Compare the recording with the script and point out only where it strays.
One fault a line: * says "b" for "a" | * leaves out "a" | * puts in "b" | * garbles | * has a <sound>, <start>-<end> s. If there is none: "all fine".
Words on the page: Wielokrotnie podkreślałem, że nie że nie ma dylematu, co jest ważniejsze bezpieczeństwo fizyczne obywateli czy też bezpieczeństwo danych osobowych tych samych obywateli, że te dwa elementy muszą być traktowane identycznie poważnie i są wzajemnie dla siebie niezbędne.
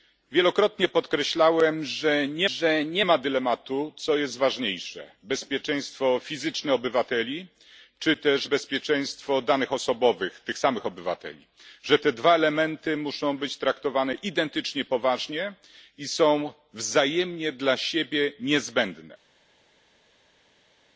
all fine